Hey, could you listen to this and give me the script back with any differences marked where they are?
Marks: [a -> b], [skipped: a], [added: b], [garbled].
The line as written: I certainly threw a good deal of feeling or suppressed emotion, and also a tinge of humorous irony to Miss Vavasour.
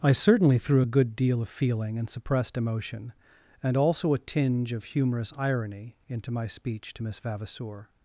I certainly threw a good deal of feeling [or -> and] suppressed emotion, and also a tinge of humorous irony [added: into my speech] to Miss Vavasour.